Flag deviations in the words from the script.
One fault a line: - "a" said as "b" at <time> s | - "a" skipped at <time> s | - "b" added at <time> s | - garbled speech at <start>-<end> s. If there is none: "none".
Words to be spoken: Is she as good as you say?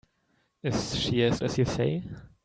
- "good" skipped at 1.4 s